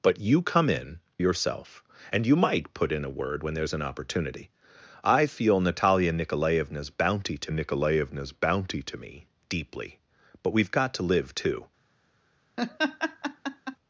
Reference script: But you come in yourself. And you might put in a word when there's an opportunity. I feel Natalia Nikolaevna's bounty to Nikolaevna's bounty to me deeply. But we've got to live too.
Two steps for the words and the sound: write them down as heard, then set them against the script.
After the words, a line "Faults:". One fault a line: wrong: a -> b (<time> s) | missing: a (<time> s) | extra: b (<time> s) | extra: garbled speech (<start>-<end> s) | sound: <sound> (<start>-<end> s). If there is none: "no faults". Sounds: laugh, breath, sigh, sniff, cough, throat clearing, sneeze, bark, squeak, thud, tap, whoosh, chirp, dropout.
But you come in yourself. And you might put in a word when there's an opportunity. I feel Natalia Nikolaevna's bounty to Nikolaevna's bounty to me deeply. But we've got to live too.
Faults:
sound: laugh (12.6-13.8 s)